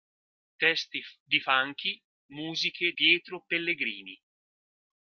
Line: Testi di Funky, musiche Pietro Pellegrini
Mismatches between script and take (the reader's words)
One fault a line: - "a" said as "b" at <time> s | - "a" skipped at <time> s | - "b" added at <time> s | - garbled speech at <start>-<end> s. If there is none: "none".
none